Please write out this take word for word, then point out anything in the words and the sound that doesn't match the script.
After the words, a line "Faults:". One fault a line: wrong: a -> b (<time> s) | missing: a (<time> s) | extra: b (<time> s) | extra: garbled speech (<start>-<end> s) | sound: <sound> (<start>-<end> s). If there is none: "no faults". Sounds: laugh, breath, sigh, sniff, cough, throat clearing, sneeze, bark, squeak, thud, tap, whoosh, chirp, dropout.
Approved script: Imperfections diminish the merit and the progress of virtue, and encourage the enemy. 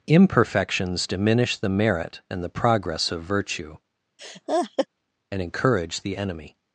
Imperfections diminish the merit and the progress of virtue, and encourage the enemy.
Faults:
sound: laugh (4.2-4.9 s)